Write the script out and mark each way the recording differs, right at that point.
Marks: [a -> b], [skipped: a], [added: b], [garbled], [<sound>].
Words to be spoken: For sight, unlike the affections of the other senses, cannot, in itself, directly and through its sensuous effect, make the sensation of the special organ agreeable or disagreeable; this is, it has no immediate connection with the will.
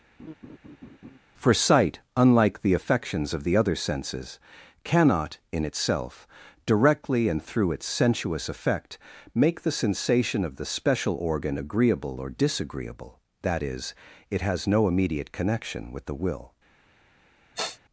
[laugh] For sight, unlike the affections of the other senses, cannot, in itself, directly and through its sensuous effect, make the sensation of the special organ agreeable or disagreeable; [this -> that] is, it has no immediate connection with the will. [sniff]